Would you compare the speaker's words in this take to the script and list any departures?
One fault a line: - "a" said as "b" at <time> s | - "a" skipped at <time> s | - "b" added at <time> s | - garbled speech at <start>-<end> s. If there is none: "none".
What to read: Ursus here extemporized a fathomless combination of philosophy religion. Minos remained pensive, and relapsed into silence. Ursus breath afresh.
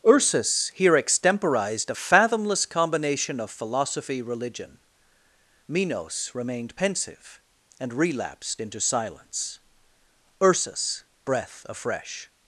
none